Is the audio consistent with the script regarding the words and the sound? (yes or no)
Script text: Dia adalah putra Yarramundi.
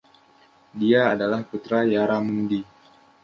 yes